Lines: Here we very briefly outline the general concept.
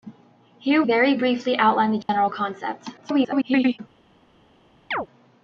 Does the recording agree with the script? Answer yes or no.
no